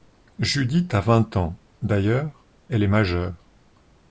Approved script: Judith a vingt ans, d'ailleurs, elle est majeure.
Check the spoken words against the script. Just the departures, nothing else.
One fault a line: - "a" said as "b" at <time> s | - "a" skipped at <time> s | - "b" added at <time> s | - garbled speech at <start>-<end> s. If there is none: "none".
none